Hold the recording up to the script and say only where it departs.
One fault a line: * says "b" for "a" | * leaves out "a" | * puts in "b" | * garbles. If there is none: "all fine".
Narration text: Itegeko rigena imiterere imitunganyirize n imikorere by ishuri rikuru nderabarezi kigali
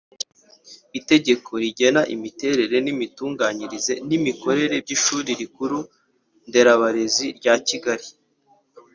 * puts in "rya"